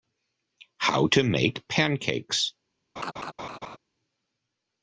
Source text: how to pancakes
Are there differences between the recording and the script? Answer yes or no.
yes